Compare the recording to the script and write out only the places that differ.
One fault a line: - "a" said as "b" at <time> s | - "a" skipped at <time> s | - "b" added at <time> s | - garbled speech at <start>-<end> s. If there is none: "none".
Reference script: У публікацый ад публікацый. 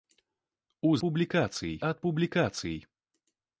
none